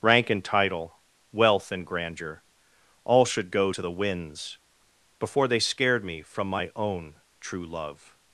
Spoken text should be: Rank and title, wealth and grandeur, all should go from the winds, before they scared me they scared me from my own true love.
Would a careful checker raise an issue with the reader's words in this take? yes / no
yes